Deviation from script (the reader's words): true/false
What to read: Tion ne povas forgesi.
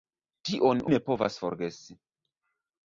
false